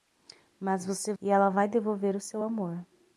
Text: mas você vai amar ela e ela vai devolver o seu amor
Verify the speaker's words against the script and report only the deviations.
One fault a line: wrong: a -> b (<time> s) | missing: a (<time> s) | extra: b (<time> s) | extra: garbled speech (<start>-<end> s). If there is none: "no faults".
missing: vai amar ela (1.1 s)